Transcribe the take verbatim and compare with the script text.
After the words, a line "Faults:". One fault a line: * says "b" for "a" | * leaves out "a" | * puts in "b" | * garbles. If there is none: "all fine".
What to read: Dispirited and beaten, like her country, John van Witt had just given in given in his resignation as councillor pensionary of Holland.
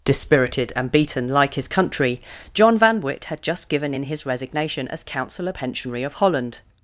Dispirited and beaten, like his country, John van Witt had just given in his resignation as councillor pensionary of Holland.
Faults:
* says "his" for "her"
* leaves out "given in"